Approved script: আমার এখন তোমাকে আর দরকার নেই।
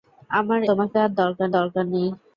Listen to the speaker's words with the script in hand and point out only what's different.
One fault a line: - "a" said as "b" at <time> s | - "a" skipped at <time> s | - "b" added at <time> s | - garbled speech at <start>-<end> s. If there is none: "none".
- "এখন" skipped at 0.6 s
- "দরকার" added at 1.6 s